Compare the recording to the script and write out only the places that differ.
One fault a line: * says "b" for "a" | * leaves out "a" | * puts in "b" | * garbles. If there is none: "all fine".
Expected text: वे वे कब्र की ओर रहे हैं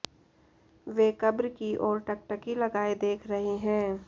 * leaves out "वे"
* puts in "टकटकी लगाए देख"